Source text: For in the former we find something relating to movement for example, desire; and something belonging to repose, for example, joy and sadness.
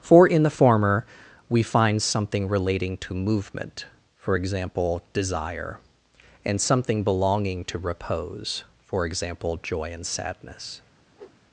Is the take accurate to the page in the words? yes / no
yes